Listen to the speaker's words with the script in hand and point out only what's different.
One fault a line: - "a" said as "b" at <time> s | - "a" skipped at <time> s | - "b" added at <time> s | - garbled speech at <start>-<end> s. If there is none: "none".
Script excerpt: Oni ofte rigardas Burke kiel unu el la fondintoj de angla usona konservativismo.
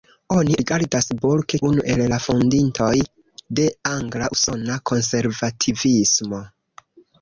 - "ofte" skipped at 0.6 s
- "kiel" skipped at 1.6 s